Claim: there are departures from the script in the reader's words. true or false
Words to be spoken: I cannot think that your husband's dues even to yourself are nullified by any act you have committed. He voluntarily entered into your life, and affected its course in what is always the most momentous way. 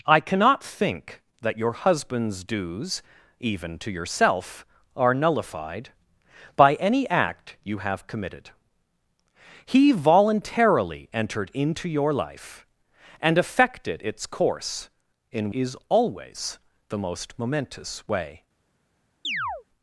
true